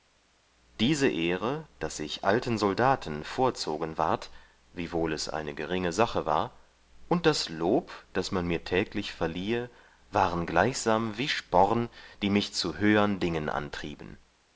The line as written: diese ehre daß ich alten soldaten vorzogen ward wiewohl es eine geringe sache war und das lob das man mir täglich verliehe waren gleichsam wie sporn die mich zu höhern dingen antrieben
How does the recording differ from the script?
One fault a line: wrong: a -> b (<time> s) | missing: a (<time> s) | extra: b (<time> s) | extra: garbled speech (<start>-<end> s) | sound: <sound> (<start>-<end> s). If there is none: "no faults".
no faults